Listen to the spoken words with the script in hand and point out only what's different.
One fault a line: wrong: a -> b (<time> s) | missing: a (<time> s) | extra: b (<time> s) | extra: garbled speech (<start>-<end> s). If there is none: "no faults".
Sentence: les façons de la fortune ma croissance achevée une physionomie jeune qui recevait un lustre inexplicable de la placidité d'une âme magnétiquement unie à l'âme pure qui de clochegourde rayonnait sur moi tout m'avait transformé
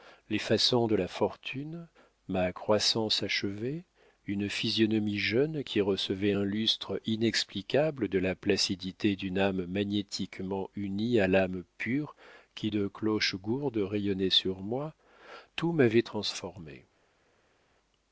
no faults